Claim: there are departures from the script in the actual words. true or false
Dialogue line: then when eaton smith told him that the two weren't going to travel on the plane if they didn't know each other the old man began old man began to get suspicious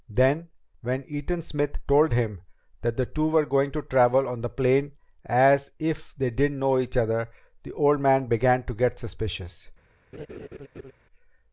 true